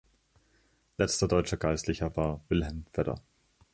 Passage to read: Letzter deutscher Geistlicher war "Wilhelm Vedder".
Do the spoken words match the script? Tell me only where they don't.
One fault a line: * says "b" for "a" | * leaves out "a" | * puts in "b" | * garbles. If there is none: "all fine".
all fine